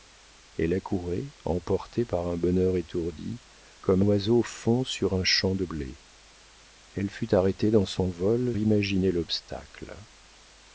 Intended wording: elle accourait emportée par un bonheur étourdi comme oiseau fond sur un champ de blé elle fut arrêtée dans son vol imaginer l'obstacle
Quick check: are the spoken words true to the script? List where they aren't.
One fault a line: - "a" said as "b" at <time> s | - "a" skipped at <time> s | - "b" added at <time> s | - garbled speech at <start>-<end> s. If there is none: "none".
none